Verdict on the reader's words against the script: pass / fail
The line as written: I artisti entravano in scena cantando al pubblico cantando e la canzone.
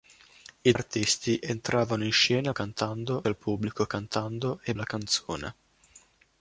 pass